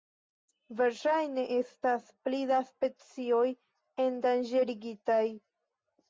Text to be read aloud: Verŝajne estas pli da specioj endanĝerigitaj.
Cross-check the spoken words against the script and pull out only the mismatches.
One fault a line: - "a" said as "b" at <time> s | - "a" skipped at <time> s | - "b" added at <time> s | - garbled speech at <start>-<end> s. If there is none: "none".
none